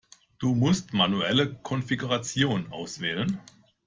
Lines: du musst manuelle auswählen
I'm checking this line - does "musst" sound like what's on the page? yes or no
yes